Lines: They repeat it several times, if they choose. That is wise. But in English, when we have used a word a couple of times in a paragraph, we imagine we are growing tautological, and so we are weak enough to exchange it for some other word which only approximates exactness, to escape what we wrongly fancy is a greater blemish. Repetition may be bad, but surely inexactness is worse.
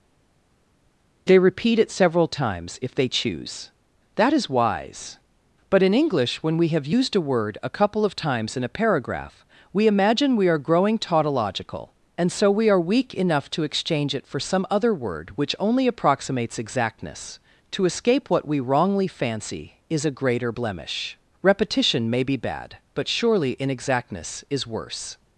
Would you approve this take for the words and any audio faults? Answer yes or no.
yes